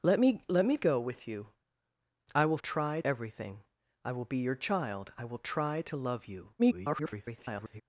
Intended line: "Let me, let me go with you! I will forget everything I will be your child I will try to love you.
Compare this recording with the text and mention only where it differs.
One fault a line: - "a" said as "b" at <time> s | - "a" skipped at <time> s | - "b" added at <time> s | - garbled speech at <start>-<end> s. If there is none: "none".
- "forget" said as "try" at 2.6 s
- garbled speech at 6.6-7.8 s